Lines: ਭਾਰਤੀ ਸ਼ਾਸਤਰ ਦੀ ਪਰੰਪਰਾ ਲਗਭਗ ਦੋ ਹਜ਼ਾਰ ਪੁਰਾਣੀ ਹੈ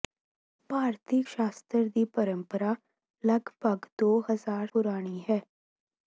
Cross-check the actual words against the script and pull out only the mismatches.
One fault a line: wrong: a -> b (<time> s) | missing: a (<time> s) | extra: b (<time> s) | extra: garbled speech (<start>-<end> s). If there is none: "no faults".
no faults